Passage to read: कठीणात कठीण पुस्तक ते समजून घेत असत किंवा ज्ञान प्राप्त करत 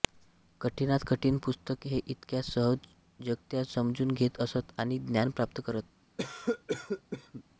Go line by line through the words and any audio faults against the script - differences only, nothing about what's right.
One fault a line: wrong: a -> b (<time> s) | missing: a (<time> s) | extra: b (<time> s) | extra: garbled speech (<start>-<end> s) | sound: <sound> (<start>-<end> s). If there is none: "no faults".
extra: इतक्या सहजगत्या (2.0 s)
wrong: किंवा -> आणि (4.8 s)
sound: cough (6.2-7.4 s)